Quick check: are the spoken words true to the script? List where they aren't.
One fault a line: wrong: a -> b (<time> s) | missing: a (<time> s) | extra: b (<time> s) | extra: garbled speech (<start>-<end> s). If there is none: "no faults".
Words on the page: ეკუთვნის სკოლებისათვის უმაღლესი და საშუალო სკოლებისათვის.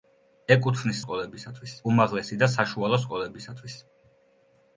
no faults